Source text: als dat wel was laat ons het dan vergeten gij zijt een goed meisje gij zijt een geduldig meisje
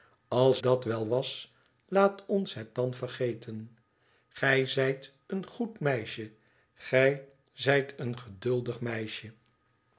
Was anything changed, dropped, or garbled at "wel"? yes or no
no